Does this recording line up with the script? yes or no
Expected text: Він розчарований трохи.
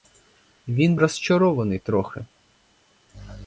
yes